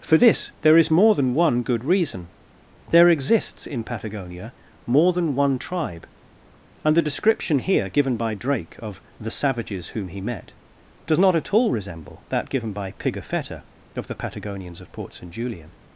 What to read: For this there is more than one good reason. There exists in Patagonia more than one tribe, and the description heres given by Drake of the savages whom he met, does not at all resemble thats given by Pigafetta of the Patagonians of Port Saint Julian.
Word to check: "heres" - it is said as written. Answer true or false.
false